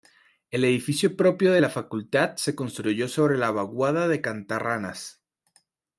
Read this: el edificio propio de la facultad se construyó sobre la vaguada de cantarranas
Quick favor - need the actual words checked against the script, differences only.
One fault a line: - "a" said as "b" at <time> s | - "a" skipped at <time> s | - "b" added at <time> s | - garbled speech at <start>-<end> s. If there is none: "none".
none